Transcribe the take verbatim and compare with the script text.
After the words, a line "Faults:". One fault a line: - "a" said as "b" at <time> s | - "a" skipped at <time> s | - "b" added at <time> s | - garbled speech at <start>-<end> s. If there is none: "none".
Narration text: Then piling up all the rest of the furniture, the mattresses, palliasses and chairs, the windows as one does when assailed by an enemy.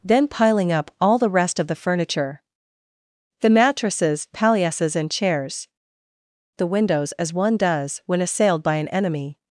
Then piling up all the rest of the furniture, the mattresses, palliasses and chairs, the windows as one does when assailed by an enemy.
Faults:
none